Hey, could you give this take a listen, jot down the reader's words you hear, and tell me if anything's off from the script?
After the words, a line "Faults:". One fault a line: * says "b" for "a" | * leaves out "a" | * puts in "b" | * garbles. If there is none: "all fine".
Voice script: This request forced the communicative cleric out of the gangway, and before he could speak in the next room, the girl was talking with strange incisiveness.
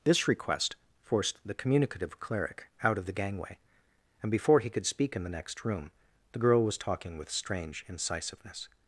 This request forced the communicative cleric out of the gangway, and before he could speak in the next room, the girl was talking with strange incisiveness.
Faults:
all fine